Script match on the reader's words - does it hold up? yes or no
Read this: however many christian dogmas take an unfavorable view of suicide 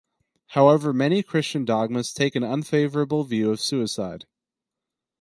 yes